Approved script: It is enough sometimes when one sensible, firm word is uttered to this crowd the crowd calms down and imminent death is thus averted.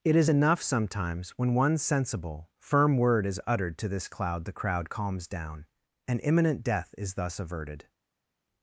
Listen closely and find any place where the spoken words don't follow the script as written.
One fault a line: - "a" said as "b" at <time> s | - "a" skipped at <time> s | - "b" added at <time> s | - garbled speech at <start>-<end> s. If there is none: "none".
- "crowd" said as "cloud" at 4.1 s